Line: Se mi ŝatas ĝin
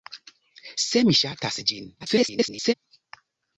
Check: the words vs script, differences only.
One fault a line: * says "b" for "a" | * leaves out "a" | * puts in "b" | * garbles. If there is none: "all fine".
* garbles